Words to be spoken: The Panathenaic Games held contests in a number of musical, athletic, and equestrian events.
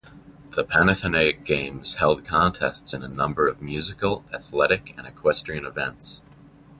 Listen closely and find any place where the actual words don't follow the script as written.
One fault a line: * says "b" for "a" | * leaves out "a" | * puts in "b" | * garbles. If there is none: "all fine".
all fine